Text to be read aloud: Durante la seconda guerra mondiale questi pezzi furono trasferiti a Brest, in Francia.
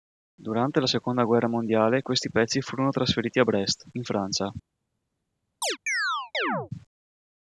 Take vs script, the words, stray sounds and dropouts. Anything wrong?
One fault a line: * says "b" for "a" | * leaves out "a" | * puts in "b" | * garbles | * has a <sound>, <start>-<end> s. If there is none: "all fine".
* has a chirp, 5.6-6.7 s